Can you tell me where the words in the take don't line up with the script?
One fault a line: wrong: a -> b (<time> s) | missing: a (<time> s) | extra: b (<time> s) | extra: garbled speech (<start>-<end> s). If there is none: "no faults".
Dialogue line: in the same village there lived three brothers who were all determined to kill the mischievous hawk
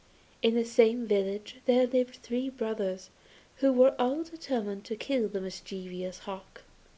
no faults